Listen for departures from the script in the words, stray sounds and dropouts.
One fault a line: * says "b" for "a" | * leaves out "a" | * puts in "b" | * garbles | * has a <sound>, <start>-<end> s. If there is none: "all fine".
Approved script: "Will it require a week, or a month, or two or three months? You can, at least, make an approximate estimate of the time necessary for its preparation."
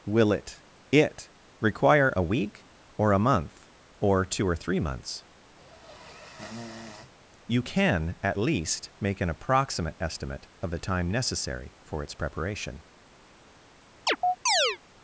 * puts in "it"
* has a sniff, 5.6-7.1 s
* has a chirp, 14.1-14.8 s